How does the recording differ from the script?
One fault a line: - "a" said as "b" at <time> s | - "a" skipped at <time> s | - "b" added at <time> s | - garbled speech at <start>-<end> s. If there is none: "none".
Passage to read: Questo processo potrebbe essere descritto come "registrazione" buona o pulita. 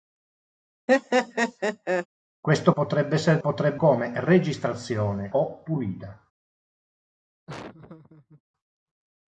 - "processo" skipped at 2.7 s
- "descritto" said as "potrebbe" at 3.4 s
- "buona" skipped at 5.3 s